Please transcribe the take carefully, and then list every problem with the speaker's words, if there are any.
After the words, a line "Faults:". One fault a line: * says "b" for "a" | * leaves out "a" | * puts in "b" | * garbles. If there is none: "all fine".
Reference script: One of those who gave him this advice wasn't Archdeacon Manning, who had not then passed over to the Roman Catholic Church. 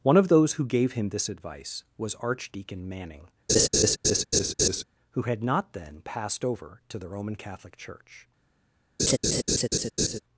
One of those who gave him this advice was Archdeacon Manning, who had not then passed over to the Roman Catholic Church.
Faults:
* says "was" for "wasn't"